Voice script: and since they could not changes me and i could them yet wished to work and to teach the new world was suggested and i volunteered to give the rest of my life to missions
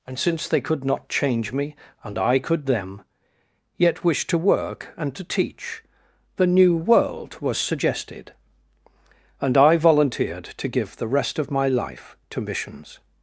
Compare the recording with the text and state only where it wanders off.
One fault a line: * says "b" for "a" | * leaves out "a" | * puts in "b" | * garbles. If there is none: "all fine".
* says "change" for "changes"